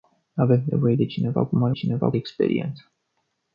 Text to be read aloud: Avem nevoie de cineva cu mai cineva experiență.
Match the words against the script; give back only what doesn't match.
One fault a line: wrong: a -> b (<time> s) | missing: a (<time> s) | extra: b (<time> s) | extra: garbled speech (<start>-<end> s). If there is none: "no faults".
no faults